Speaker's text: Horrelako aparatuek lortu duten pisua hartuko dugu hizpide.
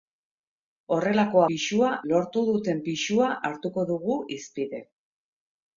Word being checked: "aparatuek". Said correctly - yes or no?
no